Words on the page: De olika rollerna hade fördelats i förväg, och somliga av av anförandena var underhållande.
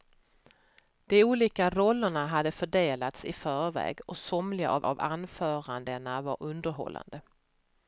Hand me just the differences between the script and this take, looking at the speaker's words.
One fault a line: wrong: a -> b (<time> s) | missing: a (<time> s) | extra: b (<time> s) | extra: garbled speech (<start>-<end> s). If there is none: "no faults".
no faults